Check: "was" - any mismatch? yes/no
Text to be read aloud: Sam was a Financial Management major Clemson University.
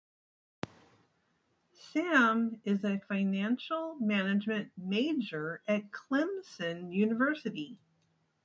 yes